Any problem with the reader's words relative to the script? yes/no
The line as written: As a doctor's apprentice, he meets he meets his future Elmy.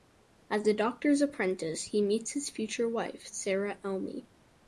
yes